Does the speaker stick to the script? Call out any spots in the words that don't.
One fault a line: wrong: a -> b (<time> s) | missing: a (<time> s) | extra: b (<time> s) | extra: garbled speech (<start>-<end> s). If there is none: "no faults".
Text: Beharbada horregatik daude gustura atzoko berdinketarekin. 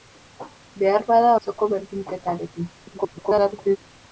missing: horregatik daude gustura (1.4 s)
extra: garbled speech (2.8-3.8 s)